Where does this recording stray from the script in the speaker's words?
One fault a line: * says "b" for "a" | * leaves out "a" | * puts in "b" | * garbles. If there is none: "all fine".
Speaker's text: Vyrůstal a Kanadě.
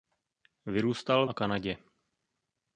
all fine